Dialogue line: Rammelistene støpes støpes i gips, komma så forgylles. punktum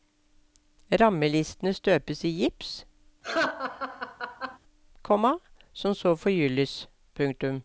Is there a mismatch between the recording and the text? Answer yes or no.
yes